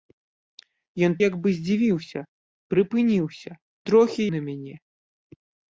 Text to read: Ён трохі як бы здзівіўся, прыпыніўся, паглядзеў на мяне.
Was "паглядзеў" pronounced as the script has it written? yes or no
no